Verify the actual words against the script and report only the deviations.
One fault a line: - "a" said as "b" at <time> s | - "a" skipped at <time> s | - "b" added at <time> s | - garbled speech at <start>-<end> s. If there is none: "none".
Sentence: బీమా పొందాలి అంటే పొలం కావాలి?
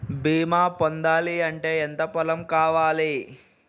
- "ఎంత" added at 1.8 s